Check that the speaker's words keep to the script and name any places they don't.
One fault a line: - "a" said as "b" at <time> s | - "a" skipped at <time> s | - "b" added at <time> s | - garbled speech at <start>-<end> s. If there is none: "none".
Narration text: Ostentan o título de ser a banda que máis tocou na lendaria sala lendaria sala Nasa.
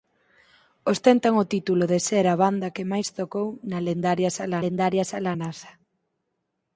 none